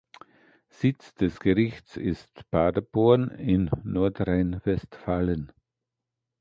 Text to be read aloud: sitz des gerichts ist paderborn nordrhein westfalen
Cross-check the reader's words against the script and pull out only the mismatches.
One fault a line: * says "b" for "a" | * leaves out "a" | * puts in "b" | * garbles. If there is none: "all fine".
* puts in "in"